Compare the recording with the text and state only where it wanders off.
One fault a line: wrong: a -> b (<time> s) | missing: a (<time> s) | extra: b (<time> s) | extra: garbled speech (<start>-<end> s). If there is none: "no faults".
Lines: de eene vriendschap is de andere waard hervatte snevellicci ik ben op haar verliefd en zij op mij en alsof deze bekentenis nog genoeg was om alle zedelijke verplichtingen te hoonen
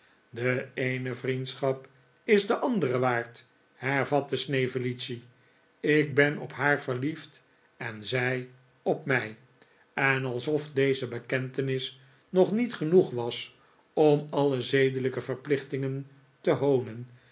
extra: niet (12.5 s)